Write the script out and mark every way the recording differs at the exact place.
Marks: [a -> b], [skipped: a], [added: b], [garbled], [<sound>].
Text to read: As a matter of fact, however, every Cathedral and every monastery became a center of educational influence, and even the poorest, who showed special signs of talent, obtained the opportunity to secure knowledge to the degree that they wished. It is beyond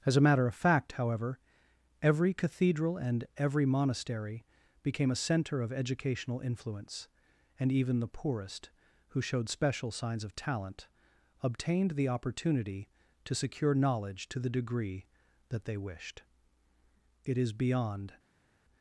As a matter of fact, however, every Cathedral and every monastery became a center of educational influence, and even the poorest, who showed special signs of talent, obtained the opportunity to secure knowledge to the degree that they wished. It is beyond